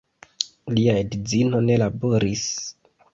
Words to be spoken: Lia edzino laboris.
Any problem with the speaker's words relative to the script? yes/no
yes